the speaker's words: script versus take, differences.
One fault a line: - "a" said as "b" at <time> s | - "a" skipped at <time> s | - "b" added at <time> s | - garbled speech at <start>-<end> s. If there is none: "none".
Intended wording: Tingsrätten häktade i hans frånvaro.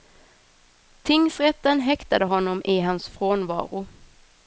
- "honom" added at 2.2 s